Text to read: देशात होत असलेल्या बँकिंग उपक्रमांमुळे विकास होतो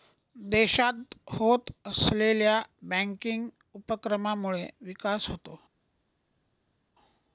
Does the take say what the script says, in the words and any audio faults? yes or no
yes